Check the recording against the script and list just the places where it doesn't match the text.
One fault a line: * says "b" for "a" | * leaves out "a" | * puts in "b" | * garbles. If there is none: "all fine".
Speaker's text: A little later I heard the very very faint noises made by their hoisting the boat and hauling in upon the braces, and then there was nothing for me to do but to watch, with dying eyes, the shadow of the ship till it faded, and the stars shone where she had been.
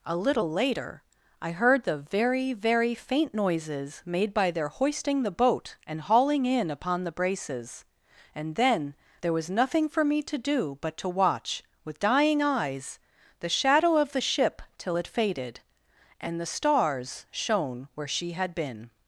all fine